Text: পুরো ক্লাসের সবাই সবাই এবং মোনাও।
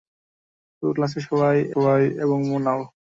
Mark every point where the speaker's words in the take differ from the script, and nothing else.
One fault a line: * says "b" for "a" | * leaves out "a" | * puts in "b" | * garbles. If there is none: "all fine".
all fine